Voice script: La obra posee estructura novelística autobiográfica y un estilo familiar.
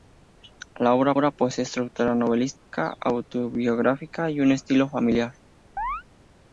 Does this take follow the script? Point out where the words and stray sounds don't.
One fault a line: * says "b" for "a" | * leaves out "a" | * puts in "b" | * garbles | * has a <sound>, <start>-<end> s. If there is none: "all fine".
* puts in "obra"
* has a dropout, 2.6-2.7 s
* has a chirp, 5.8-6.0 s